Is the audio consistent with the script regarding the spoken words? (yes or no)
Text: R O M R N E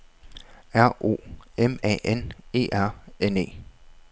no